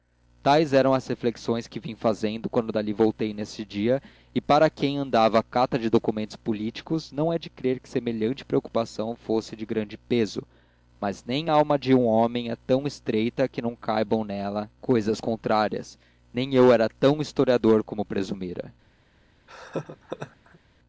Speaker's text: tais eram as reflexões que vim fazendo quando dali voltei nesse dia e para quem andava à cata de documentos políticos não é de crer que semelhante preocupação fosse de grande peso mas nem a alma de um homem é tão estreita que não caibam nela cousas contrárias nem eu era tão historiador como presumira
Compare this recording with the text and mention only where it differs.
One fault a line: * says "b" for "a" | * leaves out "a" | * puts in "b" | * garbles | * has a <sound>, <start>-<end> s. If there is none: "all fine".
* has a laugh, 19.5-20.6 s